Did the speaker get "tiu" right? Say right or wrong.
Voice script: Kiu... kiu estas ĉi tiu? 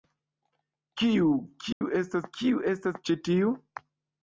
right